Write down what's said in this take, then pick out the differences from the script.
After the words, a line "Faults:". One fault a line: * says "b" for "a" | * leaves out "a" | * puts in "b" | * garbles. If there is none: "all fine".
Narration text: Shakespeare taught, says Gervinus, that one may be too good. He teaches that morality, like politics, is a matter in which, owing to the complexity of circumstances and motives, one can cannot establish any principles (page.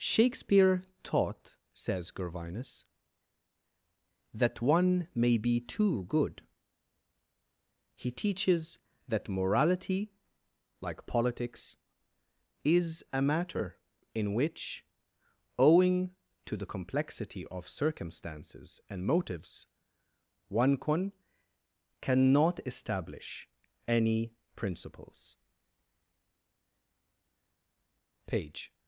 Shakespeare taught, says Gervinus, that one may be too good. He teaches that morality, like politics, is a matter in which, owing to the complexity of circumstances and motives, one can cannot establish any principles (page.
Faults:
all fine